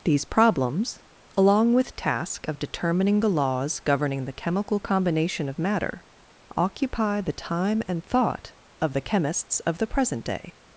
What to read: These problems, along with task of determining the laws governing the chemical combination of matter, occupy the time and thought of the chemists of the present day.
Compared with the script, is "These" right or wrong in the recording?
right